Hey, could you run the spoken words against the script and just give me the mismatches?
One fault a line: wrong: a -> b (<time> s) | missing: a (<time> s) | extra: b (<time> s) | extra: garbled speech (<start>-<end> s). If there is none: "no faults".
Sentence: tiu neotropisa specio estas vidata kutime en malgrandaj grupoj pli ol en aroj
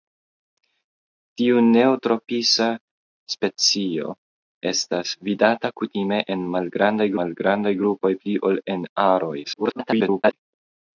extra: malgrandaj (7.2 s)
extra: garbled speech (9.4-10.3 s)